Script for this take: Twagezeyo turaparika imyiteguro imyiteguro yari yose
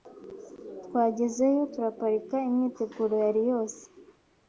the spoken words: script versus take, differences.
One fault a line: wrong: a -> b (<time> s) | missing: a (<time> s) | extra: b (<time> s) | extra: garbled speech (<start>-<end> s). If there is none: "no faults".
missing: imyiteguro (3.1 s)